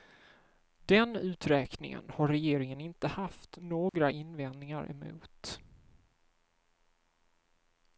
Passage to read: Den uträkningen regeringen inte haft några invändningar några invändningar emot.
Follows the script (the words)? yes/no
no